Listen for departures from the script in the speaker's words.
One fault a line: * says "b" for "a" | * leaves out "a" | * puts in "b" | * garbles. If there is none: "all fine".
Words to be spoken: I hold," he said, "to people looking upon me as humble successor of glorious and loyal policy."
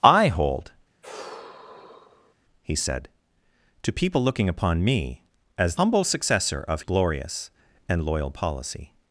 all fine